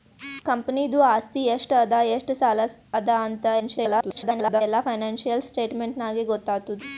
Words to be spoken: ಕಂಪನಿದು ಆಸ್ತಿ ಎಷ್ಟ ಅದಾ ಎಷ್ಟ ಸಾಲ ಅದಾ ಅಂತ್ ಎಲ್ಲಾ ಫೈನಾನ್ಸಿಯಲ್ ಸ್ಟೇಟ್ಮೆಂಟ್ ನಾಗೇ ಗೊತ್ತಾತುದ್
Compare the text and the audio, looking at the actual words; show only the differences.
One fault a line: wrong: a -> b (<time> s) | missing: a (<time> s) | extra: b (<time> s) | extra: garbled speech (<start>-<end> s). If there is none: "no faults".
extra: garbled speech (3.6-4.6 s)